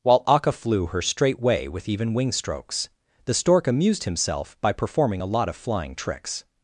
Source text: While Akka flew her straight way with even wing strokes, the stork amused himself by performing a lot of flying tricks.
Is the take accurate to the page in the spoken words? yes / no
yes